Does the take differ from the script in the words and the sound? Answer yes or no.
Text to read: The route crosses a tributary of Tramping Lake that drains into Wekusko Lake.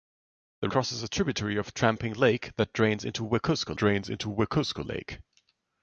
yes